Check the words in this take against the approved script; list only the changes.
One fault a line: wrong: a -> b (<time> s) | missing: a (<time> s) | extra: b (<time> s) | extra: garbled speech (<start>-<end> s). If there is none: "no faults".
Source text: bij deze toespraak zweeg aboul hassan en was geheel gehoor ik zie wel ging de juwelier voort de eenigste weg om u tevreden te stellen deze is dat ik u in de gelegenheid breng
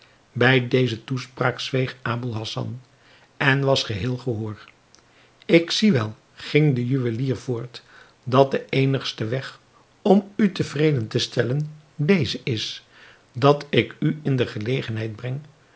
extra: dat (8.2 s)